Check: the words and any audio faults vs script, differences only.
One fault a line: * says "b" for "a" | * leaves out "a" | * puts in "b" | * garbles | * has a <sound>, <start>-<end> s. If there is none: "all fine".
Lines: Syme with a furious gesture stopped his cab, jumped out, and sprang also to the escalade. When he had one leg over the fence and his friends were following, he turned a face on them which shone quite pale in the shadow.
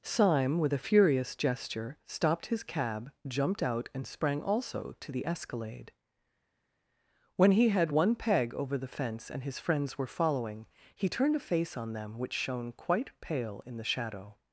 * says "peg" for "leg"